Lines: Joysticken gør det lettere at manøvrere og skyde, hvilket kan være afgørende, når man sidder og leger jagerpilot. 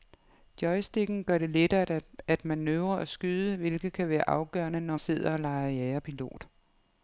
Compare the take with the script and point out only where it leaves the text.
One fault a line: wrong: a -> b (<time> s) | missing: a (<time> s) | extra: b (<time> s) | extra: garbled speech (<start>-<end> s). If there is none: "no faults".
missing: man (5.0 s)